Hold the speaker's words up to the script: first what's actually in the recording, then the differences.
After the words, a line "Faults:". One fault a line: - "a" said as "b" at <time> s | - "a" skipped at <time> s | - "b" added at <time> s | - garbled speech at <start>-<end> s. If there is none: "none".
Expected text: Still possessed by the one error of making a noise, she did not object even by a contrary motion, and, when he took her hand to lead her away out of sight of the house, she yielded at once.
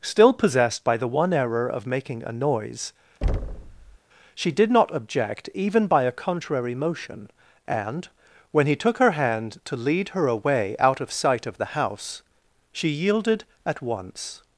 Still possessed by the one error of making a noise, she did not object even by a contrary motion, and, when he took her hand to lead her away out of sight of the house, she yielded at once.
Faults:
none